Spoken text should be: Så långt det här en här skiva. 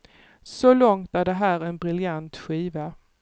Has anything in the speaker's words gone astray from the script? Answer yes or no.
yes